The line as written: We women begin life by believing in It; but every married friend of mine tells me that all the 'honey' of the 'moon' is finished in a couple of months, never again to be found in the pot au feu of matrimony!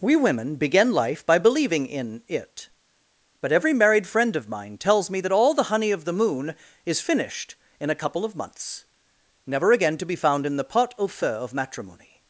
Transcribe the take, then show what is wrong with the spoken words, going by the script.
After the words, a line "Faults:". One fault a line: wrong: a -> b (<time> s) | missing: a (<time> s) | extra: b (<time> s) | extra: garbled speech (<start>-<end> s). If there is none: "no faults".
We women begin life by believing in It; but every married friend of mine tells me that all the 'honey' of the 'moon' is finished in a couple of months, never again to be found in the pot au feu of matrimony!
Faults:
no faults